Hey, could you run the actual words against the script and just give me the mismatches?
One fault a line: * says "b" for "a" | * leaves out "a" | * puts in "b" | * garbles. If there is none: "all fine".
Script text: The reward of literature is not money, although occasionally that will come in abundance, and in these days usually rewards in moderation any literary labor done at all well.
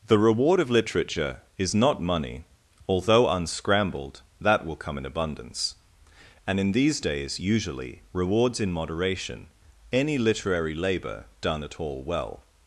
* says "unscrambled" for "occasionally"